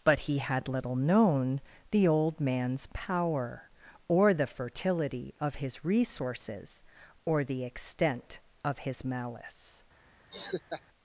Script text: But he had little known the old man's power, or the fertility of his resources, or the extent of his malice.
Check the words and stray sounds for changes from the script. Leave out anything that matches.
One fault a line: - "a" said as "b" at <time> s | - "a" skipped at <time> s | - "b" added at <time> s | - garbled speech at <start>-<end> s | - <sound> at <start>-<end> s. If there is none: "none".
- laugh at 10.3-10.8 s